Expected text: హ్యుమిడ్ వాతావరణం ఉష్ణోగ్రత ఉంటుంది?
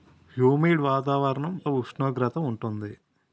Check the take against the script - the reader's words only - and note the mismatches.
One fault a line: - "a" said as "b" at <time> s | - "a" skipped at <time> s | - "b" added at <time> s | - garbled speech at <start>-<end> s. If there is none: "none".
none